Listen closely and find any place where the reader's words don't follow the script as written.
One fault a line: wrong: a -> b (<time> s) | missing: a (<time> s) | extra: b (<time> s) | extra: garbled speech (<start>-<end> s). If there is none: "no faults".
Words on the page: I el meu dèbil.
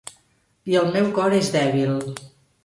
extra: cor és (1.2 s)